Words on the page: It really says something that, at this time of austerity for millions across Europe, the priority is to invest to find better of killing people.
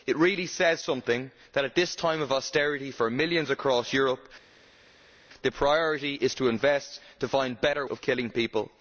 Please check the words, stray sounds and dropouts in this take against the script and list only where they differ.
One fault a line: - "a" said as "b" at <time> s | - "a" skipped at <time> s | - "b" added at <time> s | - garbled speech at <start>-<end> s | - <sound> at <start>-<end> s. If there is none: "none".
none